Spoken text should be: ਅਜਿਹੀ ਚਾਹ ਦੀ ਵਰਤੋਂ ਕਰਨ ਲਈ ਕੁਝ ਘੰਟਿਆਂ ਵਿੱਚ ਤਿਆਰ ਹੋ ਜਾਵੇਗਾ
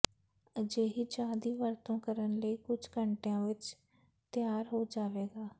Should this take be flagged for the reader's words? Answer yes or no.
no